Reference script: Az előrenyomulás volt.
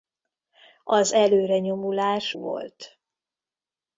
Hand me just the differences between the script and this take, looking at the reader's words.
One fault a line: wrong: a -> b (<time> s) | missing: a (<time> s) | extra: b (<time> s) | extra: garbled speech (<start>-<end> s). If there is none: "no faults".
no faults